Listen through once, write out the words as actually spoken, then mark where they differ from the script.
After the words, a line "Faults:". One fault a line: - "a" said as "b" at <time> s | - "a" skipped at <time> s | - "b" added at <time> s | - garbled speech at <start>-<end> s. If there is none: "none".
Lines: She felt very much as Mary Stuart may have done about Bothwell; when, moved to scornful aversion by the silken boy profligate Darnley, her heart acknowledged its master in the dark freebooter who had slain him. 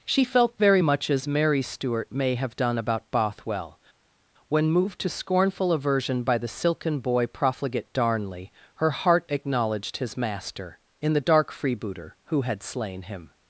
She felt very much as Mary Stuart may have done about Bothwell; when, moved to scornful aversion by the silken boy profligate Darnley, her heart acknowledged his master in the dark freebooter who had slain him.
Faults:
- "its" said as "his" at 10.0 s